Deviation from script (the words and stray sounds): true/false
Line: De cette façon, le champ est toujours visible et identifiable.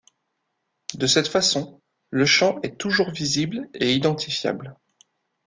false